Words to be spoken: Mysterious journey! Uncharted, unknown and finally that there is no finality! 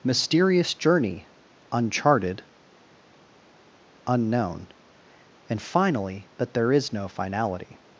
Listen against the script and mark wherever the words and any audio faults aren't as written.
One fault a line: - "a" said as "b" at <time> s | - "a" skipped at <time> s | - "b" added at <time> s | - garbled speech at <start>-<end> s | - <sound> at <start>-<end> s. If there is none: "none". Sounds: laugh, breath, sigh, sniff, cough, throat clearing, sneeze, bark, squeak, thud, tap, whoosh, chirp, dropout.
none